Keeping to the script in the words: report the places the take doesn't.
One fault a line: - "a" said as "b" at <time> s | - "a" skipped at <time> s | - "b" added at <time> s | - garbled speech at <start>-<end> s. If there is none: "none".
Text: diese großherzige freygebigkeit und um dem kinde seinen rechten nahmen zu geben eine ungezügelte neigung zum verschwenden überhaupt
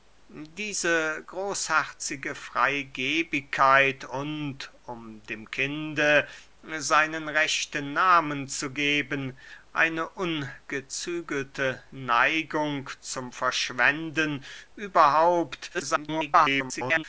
- garbled speech at 15.7-17.0 s